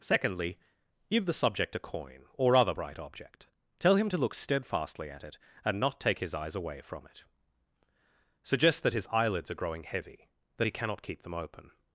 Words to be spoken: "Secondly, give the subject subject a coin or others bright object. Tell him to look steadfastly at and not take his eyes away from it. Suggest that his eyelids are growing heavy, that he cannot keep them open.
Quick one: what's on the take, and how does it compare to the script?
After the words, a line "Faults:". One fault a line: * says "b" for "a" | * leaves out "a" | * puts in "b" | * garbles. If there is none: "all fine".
"Secondly, give the subject a coin or other bright object. Tell him to look steadfastly at it and not take his eyes away from it. Suggest that his eyelids are growing heavy, that he cannot keep them open.
Faults:
* leaves out "subject"
* says "other" for "others"
* puts in "it"